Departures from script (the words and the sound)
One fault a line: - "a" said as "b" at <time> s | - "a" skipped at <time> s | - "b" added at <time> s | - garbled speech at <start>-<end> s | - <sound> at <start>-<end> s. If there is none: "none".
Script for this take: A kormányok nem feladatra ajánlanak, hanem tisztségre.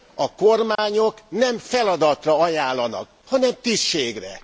- dropout at 0.8-0.8 s